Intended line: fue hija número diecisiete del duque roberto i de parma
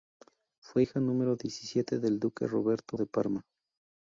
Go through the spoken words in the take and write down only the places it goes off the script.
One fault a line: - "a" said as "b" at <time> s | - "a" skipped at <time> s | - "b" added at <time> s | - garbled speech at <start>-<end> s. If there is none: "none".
- "i" skipped at 3.0 s